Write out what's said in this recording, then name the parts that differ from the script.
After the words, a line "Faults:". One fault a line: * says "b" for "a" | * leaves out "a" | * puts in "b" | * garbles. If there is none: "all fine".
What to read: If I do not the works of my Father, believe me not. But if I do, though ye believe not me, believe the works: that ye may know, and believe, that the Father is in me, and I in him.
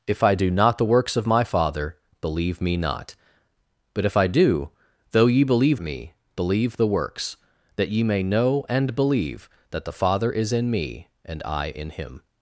If I do not the works of my Father, believe me not. But if I do, though ye believe me, believe the works: that ye may know, and believe, that the Father is in me, and I in him.
Faults:
* leaves out "not"